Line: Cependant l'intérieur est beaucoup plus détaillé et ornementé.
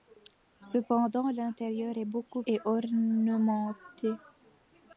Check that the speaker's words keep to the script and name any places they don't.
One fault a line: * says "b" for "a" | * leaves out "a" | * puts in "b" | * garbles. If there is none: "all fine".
* leaves out "plus détaillé"